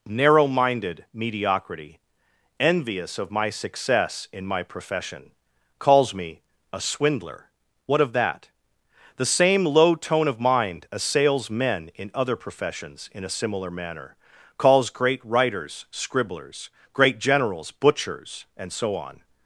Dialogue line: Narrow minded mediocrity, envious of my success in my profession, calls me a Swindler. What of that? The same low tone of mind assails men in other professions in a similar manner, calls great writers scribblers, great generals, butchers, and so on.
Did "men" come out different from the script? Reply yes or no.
no